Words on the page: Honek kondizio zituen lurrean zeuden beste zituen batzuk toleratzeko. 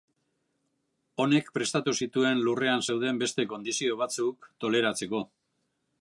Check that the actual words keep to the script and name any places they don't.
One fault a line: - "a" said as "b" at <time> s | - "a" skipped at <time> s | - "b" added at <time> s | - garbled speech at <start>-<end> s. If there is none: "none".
- "kondizio" said as "prestatu" at 1.6 s
- "zituen" said as "kondizio" at 3.5 s